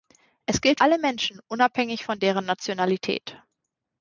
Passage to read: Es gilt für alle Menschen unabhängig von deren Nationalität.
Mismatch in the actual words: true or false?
true